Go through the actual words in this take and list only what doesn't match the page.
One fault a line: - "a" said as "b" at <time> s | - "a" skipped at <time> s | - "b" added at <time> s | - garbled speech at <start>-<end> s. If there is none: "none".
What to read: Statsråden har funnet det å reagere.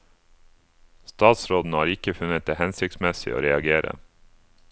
- "ikke" added at 1.9 s
- "hensiktsmessig" added at 2.6 s